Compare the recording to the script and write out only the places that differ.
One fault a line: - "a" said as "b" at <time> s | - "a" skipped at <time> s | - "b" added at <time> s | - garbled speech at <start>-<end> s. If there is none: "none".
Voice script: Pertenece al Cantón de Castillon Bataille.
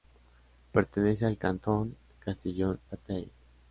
none